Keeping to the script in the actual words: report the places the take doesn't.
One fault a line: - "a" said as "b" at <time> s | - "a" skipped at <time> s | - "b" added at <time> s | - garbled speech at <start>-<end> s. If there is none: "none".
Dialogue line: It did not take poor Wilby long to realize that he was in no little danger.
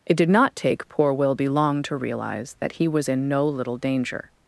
none